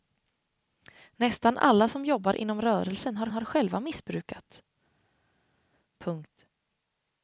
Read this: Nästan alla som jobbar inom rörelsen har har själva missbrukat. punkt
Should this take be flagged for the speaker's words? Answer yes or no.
no